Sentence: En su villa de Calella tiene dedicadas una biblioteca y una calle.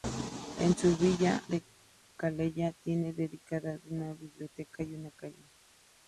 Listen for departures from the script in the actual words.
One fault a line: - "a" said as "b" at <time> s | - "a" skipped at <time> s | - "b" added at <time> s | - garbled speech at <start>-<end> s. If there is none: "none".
none